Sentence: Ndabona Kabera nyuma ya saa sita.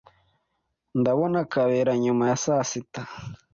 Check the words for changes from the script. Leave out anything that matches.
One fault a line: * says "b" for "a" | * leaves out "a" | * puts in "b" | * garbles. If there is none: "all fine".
all fine